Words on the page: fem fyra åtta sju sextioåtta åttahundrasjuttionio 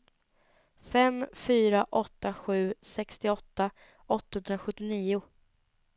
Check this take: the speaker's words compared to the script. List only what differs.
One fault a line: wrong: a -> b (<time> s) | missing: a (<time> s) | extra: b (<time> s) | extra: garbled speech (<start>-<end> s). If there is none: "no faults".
no faults